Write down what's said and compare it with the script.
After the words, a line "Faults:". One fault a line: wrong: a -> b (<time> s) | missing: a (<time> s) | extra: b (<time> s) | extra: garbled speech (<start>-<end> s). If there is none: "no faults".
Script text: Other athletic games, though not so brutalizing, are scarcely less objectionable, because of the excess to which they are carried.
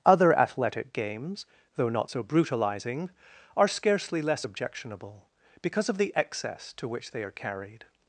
Other athletic games, though not so brutalizing, are scarcely less objectionable, because of the excess to which they are carried.
Faults:
no faults